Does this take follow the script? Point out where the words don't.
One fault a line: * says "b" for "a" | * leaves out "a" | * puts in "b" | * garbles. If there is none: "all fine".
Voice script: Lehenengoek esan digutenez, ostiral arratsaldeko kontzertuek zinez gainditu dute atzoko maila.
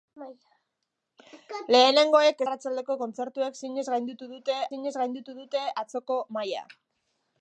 * says "arratsaldeko kontzertuek zinez gainditu dute" for "esan digutenez ostiral arratsaldeko kontzertuek"